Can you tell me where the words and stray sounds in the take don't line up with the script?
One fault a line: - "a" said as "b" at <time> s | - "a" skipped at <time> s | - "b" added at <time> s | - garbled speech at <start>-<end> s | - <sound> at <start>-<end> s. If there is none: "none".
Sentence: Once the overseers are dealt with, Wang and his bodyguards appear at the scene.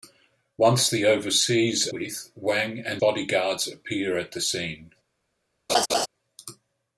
- "are dealt" skipped at 1.9 s
- "his" skipped at 3.0 s
- laugh at 5.7-6.1 s